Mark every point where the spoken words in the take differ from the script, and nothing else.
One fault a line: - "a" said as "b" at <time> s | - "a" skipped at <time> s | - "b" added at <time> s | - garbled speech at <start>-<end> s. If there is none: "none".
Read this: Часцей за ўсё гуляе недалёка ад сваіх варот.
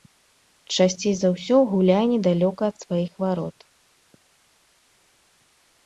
none